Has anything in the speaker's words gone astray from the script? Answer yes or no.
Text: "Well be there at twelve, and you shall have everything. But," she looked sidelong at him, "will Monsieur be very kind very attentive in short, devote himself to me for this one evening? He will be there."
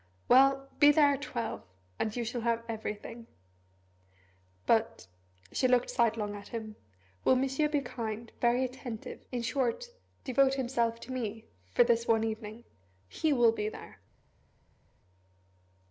yes